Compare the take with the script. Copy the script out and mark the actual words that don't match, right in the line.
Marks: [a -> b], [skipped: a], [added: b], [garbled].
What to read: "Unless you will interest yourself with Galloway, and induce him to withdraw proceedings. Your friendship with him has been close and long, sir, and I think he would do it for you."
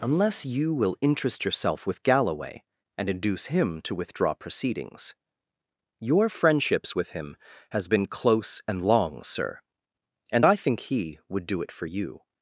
"Unless you will interest yourself with Galloway, and induce him to withdraw proceedings. Your [friendship -> friendships] with him has been close and long, sir, and I think he would do it for you."